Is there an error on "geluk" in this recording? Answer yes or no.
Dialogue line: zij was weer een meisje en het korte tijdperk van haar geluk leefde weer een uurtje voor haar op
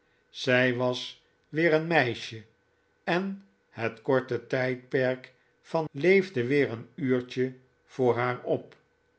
yes